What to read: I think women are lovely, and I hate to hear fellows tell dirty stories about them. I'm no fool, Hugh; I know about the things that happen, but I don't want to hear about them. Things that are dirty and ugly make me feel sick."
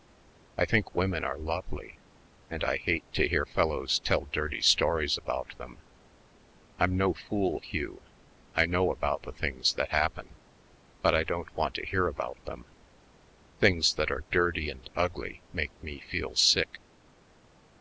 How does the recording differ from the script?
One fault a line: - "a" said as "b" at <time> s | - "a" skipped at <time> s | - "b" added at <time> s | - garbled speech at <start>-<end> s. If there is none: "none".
none